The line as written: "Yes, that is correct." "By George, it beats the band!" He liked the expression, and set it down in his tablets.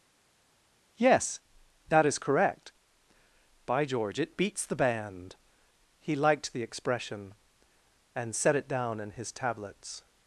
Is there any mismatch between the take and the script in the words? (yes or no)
no